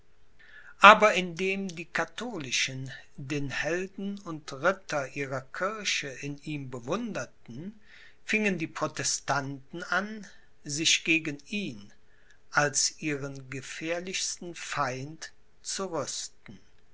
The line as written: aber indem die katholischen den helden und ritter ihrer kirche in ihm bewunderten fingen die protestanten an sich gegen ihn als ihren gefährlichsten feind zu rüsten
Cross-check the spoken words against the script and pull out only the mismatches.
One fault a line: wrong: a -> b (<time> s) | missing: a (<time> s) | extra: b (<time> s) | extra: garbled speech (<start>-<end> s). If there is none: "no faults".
no faults